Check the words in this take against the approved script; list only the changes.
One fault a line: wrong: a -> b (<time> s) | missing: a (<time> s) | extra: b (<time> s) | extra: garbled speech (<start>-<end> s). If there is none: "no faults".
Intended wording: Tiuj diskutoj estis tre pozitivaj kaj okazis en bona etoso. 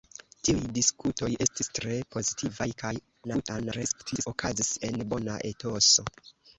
extra: garbled speech (3.2-4.3 s)